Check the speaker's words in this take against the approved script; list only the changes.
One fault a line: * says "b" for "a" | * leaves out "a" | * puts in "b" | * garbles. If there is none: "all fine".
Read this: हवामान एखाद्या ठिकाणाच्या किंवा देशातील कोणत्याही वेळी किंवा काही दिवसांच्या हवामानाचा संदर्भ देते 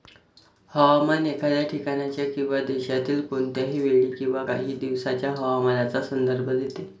all fine